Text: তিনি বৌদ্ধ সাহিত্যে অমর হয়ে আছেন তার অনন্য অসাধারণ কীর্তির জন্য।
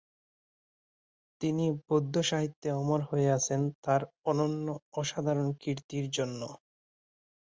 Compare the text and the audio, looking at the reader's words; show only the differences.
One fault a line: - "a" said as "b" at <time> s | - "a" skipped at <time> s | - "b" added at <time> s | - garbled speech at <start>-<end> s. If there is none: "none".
none